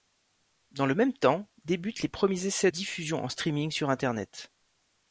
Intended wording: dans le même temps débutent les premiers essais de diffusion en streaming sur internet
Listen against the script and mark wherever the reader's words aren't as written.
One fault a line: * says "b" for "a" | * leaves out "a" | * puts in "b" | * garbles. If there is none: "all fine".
* leaves out "de"